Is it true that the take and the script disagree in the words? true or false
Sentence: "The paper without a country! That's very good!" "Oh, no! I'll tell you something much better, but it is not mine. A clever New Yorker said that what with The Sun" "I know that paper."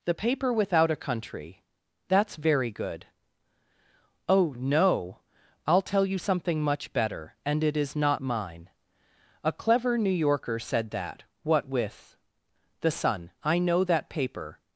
true